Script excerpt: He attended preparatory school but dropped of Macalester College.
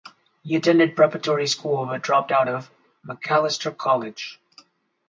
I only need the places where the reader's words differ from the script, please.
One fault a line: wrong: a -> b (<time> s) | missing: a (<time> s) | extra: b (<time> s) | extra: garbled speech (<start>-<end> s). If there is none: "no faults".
extra: out (2.3 s)